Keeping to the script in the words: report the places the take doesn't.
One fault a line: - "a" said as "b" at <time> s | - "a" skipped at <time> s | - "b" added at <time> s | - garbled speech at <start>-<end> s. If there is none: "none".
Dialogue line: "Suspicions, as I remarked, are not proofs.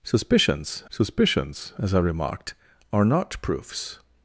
- "suspicions" added at 0.9 s